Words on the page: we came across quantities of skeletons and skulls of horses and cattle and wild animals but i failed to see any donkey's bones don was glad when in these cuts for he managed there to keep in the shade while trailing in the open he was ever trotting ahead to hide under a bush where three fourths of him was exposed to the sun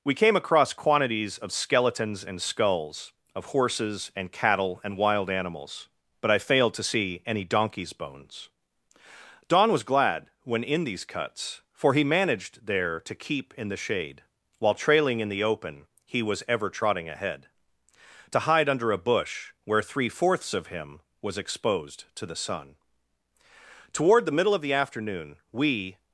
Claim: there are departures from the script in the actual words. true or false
true